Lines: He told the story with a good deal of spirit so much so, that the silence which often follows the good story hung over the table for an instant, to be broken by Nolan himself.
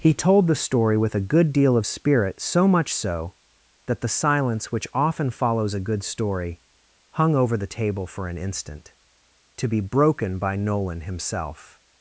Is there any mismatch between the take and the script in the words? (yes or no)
yes